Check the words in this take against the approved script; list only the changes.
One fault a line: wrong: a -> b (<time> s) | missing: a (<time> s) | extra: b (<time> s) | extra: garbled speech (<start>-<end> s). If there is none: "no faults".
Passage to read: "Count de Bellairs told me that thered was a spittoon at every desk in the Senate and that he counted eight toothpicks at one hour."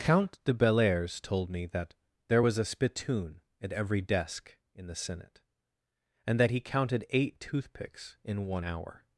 wrong: thered -> there (2.3 s)
wrong: at -> in (8.2 s)